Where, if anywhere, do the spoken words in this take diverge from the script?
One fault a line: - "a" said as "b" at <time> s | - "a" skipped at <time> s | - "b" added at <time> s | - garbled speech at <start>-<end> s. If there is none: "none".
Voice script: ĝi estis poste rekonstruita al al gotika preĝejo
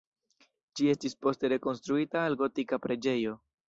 - "al" skipped at 2.4 s